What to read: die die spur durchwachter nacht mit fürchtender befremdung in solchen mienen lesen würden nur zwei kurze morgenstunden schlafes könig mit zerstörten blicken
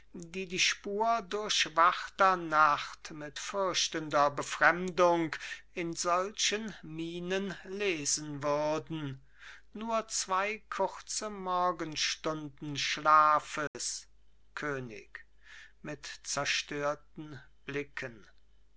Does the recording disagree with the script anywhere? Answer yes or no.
no